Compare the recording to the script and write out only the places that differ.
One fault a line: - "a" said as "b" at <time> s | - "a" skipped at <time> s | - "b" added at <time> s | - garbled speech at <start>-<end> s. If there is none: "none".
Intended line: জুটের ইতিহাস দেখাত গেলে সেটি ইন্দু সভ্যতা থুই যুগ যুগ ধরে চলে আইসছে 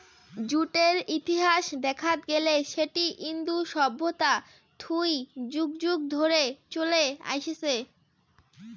none